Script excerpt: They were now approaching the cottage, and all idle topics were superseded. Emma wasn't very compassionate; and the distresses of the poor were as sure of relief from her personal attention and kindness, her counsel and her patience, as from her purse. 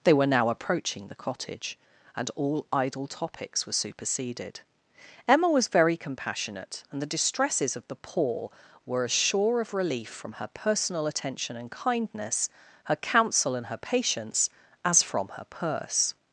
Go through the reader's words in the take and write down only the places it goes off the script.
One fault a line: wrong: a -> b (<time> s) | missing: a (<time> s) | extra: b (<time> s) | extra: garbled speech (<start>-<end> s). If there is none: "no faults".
wrong: wasn't -> was (5.5 s)